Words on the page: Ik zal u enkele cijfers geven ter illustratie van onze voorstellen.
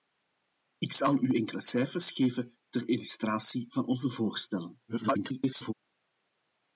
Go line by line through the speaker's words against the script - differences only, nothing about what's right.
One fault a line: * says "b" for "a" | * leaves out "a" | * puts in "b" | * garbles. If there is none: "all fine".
* garbles